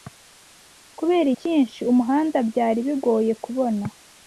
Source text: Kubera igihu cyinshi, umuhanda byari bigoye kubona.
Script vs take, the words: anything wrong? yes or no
yes